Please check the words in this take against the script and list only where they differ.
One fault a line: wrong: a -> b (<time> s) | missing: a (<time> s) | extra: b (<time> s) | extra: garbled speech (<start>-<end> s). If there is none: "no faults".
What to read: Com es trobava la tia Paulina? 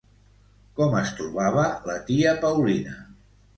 no faults